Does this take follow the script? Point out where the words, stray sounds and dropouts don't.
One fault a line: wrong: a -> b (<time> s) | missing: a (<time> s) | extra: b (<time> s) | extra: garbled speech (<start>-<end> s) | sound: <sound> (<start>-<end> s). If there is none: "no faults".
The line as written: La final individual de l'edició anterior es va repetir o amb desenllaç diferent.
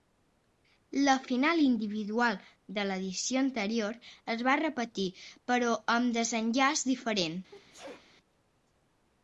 wrong: o -> però (5.5 s)
sound: sneeze (7.5-8.1 s)